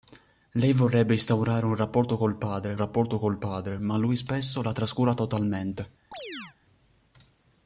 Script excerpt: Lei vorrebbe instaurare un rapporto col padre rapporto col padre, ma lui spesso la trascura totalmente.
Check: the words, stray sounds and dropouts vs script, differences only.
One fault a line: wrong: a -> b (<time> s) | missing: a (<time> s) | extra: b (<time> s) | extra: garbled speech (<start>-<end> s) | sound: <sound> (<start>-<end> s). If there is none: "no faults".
sound: chirp (6.1-6.6 s)